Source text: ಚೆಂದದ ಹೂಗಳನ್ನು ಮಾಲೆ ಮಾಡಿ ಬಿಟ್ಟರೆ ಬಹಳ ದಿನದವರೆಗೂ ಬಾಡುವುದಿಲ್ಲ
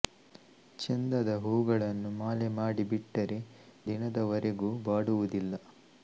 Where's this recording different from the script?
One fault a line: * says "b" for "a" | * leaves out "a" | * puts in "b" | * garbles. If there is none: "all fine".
* leaves out "ಬಹಳ"